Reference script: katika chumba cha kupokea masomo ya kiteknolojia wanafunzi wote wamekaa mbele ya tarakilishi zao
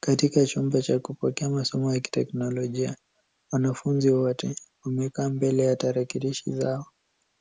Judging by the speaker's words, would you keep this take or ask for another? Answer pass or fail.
pass